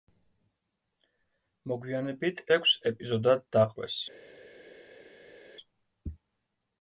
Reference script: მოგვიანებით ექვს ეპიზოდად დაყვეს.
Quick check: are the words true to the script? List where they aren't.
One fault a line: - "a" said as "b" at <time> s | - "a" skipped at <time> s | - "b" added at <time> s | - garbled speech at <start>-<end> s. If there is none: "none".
none